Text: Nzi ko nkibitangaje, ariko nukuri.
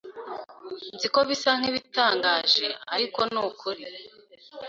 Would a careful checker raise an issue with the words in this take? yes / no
yes